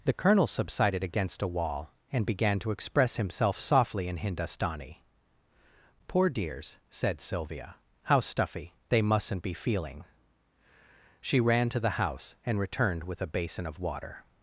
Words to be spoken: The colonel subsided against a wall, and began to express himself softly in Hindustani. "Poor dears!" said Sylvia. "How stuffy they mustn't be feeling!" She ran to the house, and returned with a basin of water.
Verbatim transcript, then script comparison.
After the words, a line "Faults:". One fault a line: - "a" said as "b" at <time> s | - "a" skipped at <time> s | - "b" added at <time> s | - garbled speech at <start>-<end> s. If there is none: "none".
The colonel subsided against a wall, and began to express himself softly in Hindustani. "Poor dears!" said Sylvia. "How stuffy they mustn't be feeling!" She ran to the house, and returned with a basin of water.
Faults:
none